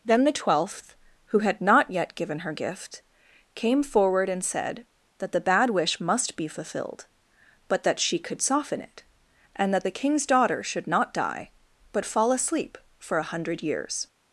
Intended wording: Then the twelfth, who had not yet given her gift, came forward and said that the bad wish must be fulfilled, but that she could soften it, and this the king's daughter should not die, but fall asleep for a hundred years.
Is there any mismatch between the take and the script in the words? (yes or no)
yes